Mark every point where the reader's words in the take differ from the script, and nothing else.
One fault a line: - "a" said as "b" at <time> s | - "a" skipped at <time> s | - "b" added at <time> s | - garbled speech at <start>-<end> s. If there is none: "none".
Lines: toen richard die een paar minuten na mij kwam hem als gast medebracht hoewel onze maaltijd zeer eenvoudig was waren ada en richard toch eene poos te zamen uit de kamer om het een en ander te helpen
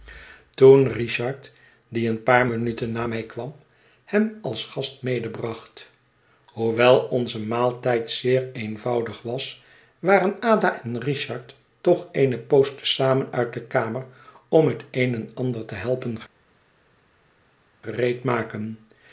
none